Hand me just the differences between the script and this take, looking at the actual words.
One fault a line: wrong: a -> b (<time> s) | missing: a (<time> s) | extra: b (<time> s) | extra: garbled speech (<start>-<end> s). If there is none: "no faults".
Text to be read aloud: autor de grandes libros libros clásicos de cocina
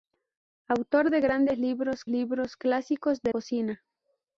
no faults